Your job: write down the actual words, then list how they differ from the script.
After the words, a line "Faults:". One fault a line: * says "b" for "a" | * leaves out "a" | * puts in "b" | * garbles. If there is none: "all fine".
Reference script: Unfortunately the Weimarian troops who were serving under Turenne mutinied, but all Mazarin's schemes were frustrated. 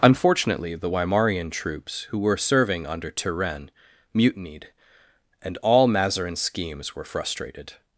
Unfortunately the Weimarian troops who were serving under Turenne mutinied, and all Mazarin's schemes were frustrated.
Faults:
* says "and" for "but"